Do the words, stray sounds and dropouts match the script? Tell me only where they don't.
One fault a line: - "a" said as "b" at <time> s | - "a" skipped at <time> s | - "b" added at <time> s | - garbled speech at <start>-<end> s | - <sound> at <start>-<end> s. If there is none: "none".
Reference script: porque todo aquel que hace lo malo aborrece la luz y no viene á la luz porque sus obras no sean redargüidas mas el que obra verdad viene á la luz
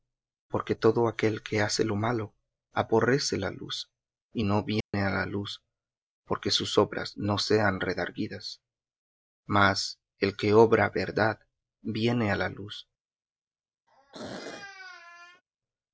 - dropout at 4.8-4.9 s
- throat clearing at 13.9-15.4 s